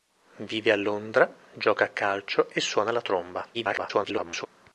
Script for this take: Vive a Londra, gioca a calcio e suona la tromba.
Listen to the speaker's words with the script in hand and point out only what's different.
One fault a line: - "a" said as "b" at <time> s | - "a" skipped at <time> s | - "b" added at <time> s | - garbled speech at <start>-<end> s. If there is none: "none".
- garbled speech at 3.5-4.5 s